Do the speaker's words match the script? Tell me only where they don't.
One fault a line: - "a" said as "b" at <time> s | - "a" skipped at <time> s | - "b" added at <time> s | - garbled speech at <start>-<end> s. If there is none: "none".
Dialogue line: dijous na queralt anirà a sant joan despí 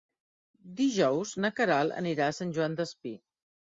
none